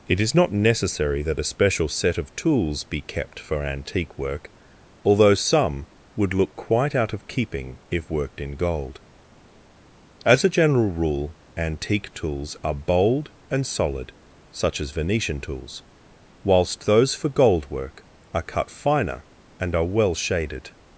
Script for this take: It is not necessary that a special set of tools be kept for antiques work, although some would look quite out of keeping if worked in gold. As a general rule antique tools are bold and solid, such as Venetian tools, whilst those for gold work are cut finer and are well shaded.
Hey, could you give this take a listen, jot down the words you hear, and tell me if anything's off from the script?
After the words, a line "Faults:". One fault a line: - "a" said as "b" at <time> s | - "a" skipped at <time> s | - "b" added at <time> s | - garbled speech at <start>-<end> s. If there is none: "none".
It is not necessary that a special set of tools be kept for antique work, although some would look quite out of keeping if worked in gold. As a general rule antique tools are bold and solid, such as Venetian tools, whilst those for gold work are cut finer and are well shaded.
Faults:
- "antiques" said as "antique" at 3.6 s